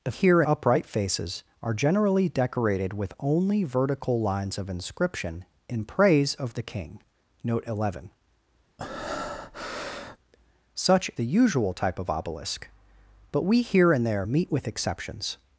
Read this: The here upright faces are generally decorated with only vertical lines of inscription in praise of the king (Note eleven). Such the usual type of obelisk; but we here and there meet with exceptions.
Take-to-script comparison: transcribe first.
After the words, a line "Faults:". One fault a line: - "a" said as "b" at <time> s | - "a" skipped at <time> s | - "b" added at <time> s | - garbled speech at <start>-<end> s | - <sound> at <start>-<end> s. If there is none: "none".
The here upright faces are generally decorated with only vertical lines of inscription in praise of the king (Note eleven). Such the usual type of obelisk; but we here and there meet with exceptions.
Faults:
- breath at 8.8-10.2 s